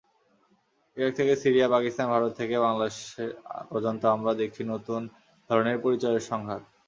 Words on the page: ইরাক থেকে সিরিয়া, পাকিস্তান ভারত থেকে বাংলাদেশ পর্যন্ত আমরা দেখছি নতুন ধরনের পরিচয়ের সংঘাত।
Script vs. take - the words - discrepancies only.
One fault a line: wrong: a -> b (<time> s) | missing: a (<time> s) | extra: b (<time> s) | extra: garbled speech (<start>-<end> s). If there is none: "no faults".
no faults